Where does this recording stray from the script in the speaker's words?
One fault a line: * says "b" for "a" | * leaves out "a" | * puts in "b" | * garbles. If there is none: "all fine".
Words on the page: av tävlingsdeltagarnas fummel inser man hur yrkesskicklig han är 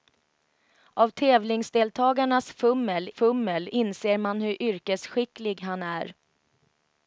* puts in "fummel"